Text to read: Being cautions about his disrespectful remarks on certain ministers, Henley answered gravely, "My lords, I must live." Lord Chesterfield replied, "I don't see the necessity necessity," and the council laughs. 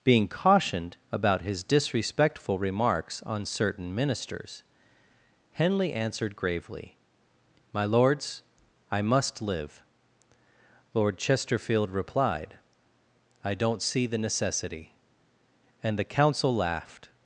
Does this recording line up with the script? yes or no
no